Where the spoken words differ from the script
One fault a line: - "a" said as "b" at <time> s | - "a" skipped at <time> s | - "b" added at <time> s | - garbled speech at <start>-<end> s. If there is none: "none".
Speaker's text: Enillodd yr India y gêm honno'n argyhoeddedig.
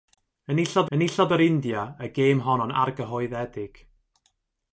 - "enillodd" added at 1.0 s